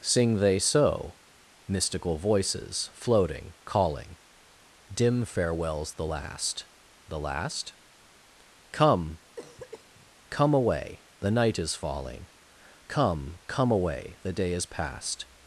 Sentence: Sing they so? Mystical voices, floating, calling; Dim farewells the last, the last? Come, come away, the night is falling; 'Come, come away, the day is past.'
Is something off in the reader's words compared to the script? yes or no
no